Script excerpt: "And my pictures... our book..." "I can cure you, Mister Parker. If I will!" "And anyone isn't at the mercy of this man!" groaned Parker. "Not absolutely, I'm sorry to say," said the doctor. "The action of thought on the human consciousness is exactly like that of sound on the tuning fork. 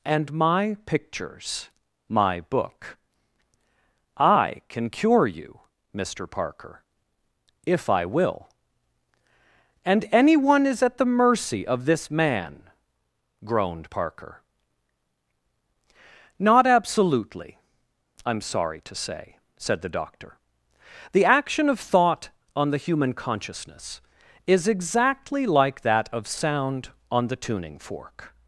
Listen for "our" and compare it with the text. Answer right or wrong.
wrong